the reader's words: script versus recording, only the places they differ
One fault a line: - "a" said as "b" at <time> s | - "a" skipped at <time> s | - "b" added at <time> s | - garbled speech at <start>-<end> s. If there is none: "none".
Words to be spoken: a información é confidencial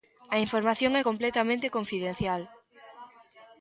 - "completamente" added at 1.1 s